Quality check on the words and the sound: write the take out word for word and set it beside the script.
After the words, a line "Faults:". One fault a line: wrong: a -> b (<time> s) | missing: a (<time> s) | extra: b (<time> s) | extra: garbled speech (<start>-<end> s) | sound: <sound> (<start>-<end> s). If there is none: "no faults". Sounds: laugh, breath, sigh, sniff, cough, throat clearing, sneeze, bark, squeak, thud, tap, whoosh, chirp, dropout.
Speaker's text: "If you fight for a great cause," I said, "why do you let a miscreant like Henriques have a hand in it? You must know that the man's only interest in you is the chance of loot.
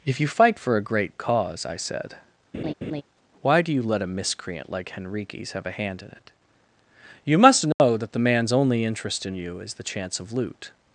"If you fight for a great cause," I said, "why do you let a miscreant like Henriques have a hand in it? You must know that the man's only interest in you is the chance of loot.
Faults:
sound: laugh (2.5-3.0 s)
sound: dropout (7.7-7.8 s)